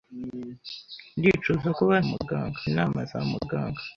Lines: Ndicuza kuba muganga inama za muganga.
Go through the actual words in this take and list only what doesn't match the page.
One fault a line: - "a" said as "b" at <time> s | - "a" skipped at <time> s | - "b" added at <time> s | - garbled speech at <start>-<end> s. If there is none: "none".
none